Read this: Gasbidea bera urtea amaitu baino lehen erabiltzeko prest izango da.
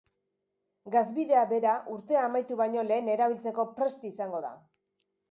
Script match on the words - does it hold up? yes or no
yes